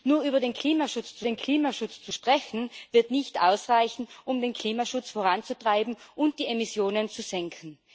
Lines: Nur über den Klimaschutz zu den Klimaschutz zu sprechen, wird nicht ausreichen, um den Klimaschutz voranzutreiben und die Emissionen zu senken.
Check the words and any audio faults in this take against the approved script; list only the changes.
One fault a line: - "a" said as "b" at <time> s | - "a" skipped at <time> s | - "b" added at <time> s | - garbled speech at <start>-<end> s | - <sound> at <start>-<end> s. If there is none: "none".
none